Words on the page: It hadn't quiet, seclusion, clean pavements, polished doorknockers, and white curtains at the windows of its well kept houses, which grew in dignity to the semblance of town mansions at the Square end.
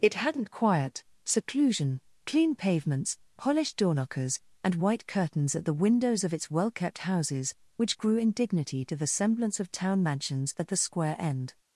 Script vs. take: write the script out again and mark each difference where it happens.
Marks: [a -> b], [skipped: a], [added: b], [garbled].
It hadn't quiet, seclusion, clean pavements, polished doorknockers, and white curtains at the windows of its well kept houses, which grew in dignity to the semblance of town mansions at the Square end.